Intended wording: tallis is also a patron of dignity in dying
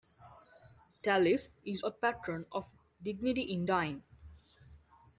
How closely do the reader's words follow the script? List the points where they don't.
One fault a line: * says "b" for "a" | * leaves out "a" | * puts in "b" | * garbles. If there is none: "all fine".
* leaves out "also"